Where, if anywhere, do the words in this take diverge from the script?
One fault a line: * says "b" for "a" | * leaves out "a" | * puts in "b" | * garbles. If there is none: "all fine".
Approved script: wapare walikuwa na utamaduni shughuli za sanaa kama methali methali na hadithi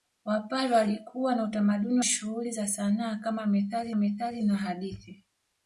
all fine